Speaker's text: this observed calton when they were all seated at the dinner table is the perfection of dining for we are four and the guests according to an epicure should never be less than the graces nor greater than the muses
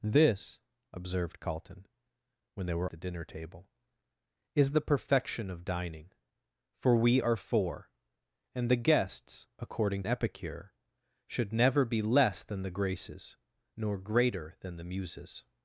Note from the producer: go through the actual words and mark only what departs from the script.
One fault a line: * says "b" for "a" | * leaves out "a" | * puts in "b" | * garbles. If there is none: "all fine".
* leaves out "all seated at"
* leaves out "to an"